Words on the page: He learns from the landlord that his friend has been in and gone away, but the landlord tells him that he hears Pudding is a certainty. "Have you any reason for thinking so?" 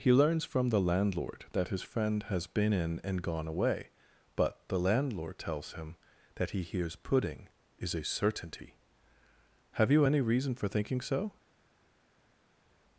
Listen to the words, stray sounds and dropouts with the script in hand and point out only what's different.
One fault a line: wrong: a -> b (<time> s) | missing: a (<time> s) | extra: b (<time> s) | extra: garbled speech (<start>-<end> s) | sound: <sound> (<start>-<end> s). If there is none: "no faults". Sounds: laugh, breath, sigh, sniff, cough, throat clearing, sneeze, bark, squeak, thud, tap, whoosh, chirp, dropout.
no faults